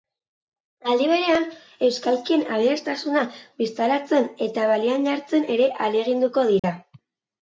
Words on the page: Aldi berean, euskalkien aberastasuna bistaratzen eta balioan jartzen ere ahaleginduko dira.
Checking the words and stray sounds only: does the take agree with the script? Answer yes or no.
no